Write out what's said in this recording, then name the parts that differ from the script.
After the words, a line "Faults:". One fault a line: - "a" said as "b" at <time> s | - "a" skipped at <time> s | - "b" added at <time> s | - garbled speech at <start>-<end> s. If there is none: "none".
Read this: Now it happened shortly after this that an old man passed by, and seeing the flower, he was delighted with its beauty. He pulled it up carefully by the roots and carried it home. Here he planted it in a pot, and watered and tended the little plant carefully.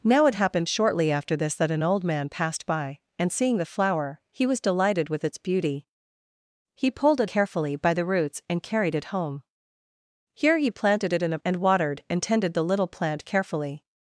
Now it happened shortly after this that an old man passed by, and seeing the flower, he was delighted with its beauty. He pulled it carefully by the roots and carried it home. Here he planted it in a and watered and tended the little plant carefully.
Faults:
- "up" skipped at 7.3 s
- "pot" skipped at 11.4 s